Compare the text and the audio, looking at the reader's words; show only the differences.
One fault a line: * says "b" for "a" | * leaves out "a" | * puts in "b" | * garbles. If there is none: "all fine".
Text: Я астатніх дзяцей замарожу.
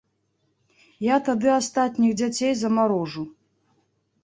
* puts in "тады"